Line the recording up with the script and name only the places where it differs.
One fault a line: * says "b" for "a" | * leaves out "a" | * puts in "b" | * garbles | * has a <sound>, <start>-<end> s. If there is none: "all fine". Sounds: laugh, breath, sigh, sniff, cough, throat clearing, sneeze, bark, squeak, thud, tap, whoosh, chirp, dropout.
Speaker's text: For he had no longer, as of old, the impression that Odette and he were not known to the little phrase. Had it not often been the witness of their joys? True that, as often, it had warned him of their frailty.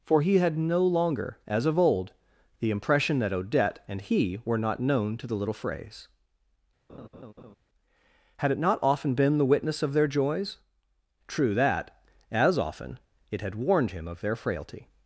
* has a laugh, 6.9-7.6 s